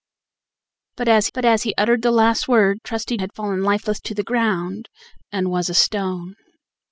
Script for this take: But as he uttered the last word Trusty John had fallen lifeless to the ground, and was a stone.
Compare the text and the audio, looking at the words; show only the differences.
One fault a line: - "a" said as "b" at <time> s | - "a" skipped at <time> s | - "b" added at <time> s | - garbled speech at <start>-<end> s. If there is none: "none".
- "but as" added at 1.3 s
- "John" skipped at 3.2 s